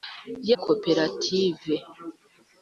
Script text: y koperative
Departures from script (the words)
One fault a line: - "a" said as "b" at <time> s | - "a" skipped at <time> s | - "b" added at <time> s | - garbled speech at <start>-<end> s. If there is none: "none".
none